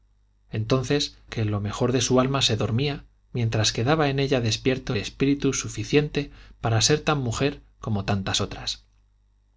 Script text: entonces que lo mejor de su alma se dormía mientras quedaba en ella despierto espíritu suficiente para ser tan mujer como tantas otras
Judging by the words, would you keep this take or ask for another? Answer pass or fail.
pass